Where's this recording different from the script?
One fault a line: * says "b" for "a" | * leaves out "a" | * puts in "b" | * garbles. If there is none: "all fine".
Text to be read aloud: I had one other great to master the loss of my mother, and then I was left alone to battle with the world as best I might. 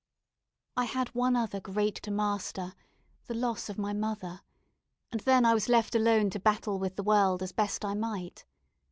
all fine